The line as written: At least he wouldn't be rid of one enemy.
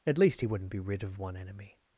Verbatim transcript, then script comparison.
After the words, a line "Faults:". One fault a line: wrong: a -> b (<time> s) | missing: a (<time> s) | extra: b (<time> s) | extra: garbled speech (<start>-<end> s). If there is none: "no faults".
At least he wouldn't be rid of one enemy.
Faults:
no faults